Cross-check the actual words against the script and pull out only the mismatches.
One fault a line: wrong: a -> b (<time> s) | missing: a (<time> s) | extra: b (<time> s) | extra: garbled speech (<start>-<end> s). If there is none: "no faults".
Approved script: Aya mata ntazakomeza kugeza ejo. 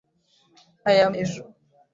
missing: mata ntazakomeza kugeza (1.1 s)